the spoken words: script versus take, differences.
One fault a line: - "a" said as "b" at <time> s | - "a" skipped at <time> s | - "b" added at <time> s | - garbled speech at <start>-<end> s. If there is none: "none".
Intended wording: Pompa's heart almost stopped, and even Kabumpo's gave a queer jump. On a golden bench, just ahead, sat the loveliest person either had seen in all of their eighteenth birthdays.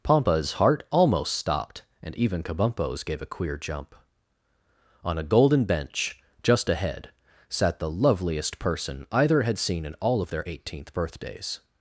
none